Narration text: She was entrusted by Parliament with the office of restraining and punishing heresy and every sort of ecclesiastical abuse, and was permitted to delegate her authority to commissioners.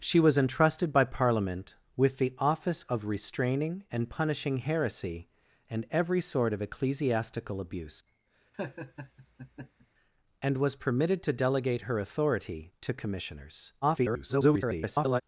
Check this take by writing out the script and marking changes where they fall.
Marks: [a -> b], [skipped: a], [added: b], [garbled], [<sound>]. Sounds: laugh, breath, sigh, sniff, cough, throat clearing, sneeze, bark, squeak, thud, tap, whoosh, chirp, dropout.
She was entrusted by Parliament with the office of restraining and punishing heresy and every sort of ecclesiastical abuse, [laugh] and was permitted to delegate her authority to commissioners. [garbled]